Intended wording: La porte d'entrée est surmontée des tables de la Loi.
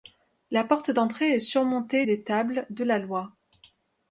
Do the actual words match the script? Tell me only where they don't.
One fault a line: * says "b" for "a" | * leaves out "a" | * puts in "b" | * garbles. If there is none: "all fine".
all fine